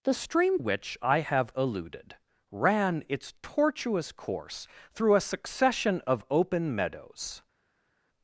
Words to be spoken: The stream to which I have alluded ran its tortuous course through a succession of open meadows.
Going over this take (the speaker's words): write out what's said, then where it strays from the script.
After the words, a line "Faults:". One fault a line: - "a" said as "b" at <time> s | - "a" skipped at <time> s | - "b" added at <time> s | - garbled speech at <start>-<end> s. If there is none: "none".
The stream which I have alluded ran its tortuous course through a succession of open meadows.
Faults:
- "to" skipped at 0.6 s